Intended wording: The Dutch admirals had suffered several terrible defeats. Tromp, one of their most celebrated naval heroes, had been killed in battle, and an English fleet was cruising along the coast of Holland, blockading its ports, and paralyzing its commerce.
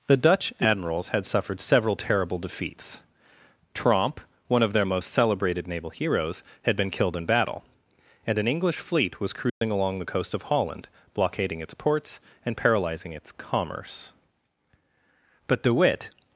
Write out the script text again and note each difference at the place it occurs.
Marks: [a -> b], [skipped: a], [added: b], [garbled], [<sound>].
The Dutch admirals had suffered several terrible defeats. Tromp, one of their most celebrated naval heroes, had been killed in battle, and an English fleet was cruising [dropout] along the coast of Holland, blockading its ports, and paralyzing its commerce. [added: But De Witt]